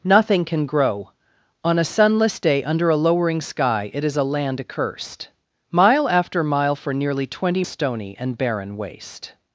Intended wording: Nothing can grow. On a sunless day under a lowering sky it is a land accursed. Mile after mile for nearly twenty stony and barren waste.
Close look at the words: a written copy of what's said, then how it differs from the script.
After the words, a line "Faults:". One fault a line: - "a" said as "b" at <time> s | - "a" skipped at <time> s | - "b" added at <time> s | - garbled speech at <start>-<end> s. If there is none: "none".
Nothing can grow. On a sunless day under a lowering sky it is a land accursed. Mile after mile for nearly twenty stony and barren waste.
Faults:
none